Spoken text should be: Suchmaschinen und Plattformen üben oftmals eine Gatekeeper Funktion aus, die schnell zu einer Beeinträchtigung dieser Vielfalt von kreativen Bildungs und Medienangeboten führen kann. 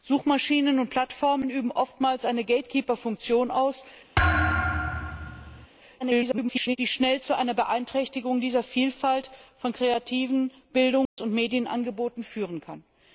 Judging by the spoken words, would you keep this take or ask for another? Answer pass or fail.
fail